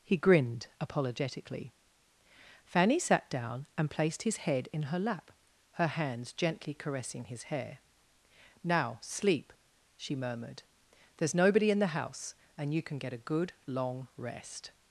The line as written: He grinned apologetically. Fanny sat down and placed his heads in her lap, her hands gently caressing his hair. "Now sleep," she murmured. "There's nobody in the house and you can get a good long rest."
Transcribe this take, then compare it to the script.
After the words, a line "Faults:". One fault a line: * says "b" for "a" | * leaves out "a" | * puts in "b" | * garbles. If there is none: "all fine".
He grinned apologetically. Fanny sat down and placed his head in her lap, her hands gently caressing his hair. "Now sleep," she murmured. "There's nobody in the house and you can get a good long rest."
Faults:
* says "head" for "heads"